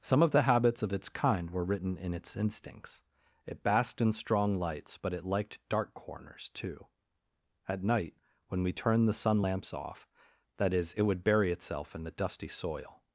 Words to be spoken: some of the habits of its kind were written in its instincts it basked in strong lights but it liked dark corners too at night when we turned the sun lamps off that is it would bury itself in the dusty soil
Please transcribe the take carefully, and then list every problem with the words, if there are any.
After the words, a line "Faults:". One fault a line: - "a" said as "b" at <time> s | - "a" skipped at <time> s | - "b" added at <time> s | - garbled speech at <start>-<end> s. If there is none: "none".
some of the habits of its kind were written in its instincts it basked in strong lights but it liked dark corners too at night when we turned the sun lamps off that is it would bury itself in the dusty soil
Faults:
none